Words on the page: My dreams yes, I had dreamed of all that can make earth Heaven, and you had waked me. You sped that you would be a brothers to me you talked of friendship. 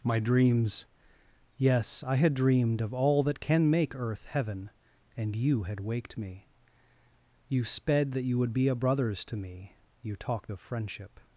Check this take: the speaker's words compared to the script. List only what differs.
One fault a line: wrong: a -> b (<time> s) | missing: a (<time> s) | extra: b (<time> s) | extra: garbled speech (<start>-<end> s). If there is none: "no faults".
no faults